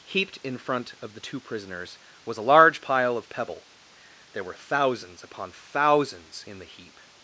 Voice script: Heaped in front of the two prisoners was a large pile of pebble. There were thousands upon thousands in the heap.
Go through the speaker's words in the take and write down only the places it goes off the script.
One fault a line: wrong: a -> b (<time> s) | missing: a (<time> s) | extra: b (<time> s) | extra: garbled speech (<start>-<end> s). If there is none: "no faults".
no faults